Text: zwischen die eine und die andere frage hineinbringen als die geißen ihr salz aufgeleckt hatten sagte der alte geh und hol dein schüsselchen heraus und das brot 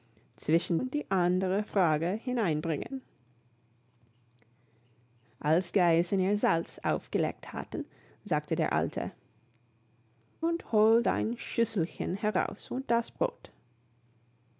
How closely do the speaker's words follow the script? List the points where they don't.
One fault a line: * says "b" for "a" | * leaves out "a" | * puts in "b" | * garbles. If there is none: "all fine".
* leaves out "die eine"
* leaves out "die"
* leaves out "geh"